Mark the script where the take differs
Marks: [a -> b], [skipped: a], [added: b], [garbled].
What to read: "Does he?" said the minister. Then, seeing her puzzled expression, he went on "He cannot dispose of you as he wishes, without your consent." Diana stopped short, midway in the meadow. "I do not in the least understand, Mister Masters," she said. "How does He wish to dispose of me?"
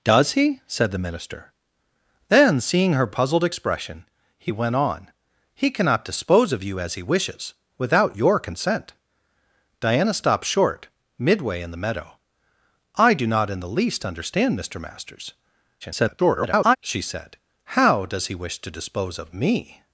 "Does he?" said the minister. Then, seeing her puzzled expression, he went on "He cannot dispose of you as he wishes, without your consent." Diana stopped short, midway in the meadow. "I do not in the least understand, Mister Masters," [garbled] she said. "How does He wish to dispose of me?"